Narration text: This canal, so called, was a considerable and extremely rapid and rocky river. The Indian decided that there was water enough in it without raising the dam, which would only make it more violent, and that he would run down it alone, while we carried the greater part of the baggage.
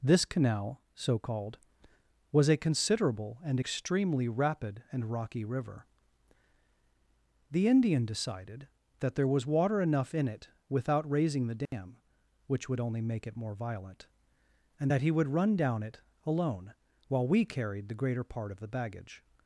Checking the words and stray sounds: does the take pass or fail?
fail